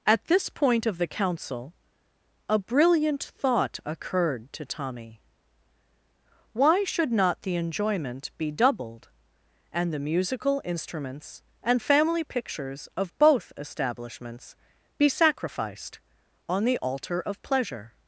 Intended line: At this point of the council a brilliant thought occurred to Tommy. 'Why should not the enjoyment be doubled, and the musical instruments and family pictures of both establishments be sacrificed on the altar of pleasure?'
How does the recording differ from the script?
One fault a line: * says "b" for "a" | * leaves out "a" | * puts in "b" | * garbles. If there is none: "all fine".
all fine